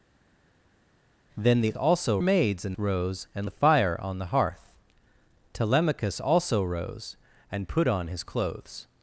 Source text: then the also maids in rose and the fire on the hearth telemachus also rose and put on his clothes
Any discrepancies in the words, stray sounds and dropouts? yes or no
no